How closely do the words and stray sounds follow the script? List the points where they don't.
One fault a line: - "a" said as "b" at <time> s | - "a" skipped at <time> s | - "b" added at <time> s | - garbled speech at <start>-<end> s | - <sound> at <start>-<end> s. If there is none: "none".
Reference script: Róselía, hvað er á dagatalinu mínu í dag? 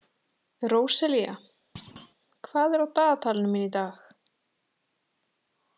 - thud at 1.8-2.2 s